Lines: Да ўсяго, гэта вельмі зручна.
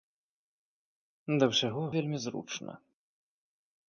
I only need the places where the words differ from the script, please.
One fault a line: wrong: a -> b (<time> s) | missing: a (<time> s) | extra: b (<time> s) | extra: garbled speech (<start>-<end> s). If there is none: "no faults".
missing: гэта (1.8 s)